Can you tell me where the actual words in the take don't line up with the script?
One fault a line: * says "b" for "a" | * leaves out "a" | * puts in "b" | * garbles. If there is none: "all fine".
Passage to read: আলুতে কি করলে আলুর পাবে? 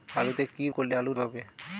all fine